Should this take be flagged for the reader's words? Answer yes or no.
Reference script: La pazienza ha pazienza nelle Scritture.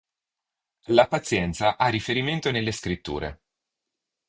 yes